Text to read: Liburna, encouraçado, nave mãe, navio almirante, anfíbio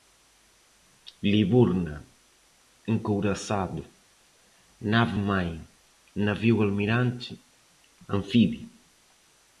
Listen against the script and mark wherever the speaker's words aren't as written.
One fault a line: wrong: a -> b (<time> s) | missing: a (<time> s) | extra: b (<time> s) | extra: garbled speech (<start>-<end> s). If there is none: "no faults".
no faults